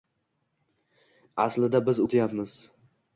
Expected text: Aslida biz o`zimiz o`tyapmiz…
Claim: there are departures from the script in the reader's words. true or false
true